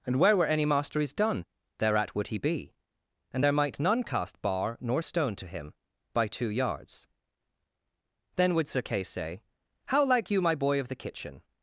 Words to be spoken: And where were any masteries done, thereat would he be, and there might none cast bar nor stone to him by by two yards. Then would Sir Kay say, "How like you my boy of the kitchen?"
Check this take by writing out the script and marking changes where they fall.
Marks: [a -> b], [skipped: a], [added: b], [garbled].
And where were any masteries done, thereat would he be, and there might none cast bar nor stone to him by [skipped: by] two yards. Then would Sir Kay say, "How like you my boy of the kitchen?"